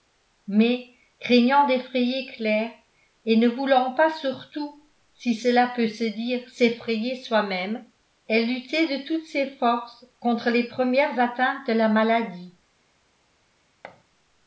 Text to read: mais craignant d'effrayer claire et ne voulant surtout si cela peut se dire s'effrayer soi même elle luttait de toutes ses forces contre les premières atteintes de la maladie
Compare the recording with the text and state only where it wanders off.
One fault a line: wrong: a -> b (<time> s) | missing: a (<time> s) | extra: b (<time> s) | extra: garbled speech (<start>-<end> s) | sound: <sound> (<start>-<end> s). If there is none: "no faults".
extra: pas (3.9 s)
sound: thud (13.8-14.0 s)